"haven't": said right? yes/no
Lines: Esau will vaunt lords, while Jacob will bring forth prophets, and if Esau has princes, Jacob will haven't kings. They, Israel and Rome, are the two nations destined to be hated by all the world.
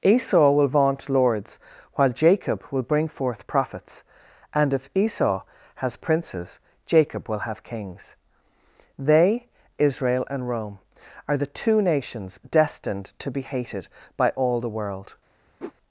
no